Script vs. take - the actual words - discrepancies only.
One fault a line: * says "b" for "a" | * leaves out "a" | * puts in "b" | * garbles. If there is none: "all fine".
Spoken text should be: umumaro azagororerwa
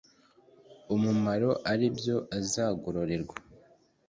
* puts in "ari byo"